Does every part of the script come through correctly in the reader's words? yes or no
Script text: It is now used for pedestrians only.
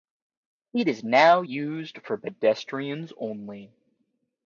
yes